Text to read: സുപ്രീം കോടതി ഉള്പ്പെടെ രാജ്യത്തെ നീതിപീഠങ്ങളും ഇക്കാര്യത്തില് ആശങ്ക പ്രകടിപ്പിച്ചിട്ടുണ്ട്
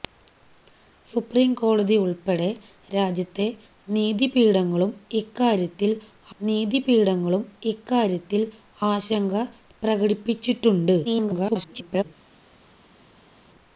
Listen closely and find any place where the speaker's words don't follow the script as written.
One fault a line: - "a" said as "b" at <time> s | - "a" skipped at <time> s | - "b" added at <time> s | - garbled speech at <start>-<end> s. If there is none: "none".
- "നീതിപീഠങ്ങളും ഇക്കാര്യത്തില്" added at 6.4 s
- garbled speech at 11.0-12.1 s